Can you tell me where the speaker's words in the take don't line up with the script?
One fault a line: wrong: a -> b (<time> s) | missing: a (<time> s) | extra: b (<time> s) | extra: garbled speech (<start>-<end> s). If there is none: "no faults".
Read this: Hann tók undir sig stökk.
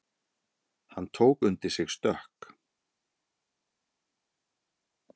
no faults